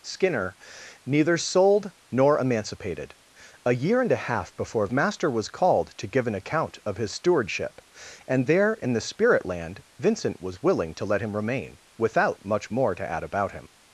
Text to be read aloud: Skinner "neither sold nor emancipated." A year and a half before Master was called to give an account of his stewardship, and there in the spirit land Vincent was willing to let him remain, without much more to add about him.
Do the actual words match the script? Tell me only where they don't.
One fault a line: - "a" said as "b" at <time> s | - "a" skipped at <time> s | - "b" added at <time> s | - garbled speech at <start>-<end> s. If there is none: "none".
none